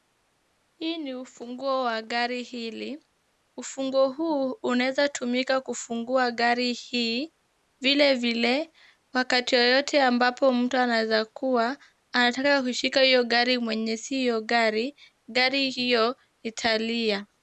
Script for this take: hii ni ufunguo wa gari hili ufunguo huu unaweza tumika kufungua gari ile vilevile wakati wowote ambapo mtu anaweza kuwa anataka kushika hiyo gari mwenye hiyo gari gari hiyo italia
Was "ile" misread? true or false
true